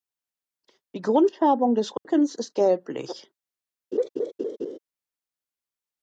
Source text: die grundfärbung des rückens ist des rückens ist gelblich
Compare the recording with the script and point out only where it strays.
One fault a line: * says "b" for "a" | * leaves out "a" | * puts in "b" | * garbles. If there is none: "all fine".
* leaves out "des rückens ist"